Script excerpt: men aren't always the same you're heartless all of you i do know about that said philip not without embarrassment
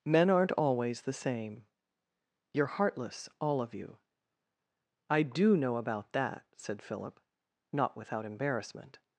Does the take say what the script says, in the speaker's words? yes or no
yes